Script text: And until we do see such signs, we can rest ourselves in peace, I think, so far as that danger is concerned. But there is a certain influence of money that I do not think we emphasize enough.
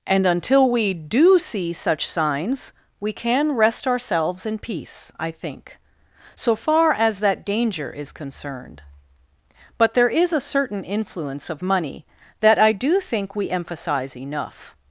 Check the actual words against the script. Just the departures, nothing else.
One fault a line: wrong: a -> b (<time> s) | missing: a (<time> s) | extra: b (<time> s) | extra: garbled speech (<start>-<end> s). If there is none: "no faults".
missing: not (13.0 s)